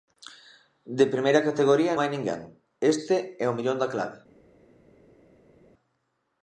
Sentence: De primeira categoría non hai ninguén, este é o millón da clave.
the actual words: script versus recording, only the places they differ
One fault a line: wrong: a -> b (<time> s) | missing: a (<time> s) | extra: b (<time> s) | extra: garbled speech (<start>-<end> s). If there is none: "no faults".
missing: non (1.9 s)